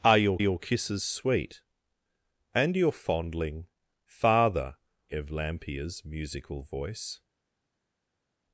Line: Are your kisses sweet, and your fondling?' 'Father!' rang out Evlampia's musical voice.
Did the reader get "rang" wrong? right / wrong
wrong